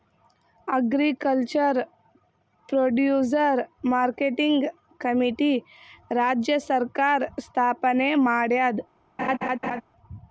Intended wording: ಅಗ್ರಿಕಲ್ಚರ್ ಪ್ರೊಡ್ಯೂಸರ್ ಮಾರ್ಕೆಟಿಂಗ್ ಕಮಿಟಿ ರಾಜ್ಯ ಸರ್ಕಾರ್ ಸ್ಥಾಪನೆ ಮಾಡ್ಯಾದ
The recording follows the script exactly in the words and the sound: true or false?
false